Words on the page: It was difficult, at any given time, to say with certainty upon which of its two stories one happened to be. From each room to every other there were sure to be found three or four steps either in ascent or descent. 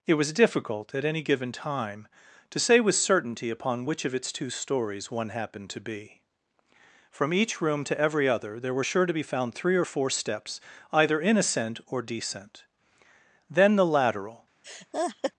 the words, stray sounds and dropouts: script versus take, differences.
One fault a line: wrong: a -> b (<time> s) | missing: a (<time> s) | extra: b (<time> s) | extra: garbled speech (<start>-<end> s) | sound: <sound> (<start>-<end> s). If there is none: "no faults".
extra: Then the lateral (13.5 s)
sound: laugh (14.6-15.3 s)